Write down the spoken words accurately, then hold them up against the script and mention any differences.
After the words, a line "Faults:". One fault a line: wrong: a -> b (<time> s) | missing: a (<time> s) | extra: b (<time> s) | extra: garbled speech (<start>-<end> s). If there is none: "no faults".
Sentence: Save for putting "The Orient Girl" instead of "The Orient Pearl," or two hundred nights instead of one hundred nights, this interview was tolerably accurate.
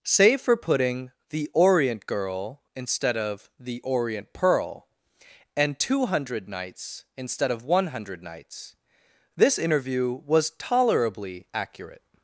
Save for putting "The Orient Girl" instead of "The Orient Pearl," and two hundred nights instead of one hundred nights, this interview was tolerably accurate.
Faults:
wrong: or -> and (5.5 s)